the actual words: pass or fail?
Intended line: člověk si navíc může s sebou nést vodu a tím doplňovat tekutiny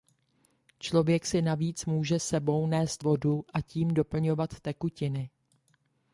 pass